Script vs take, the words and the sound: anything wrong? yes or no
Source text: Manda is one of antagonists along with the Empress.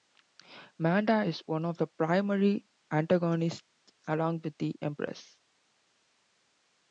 yes